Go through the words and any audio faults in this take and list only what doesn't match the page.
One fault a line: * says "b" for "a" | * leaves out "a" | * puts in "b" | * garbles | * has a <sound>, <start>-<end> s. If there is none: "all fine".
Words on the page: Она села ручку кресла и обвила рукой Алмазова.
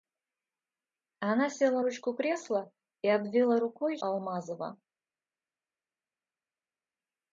all fine